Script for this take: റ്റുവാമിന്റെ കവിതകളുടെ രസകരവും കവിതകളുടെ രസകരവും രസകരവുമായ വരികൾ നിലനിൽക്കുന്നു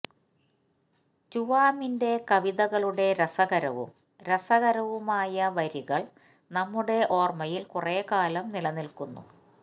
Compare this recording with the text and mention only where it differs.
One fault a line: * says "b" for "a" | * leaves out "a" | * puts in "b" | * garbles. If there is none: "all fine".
* says "രസകരവുമായ വരികൾ നമ്മുടെ ഓർമ്മയിൽ കുറെക്കാലം" for "കവിതകളുടെ രസകരവും രസകരവുമായ വരികൾ"